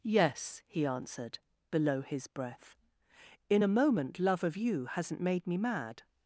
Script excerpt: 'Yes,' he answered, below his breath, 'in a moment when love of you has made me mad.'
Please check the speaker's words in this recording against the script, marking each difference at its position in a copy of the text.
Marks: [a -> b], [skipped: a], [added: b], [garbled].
'Yes,' he answered, below his breath, 'in a moment [skipped: when] love of you [has -> hasn't] made me mad.'